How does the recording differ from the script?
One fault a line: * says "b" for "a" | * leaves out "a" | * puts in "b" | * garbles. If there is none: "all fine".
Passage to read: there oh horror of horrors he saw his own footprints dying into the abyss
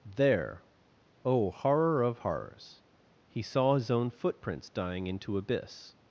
* leaves out "the"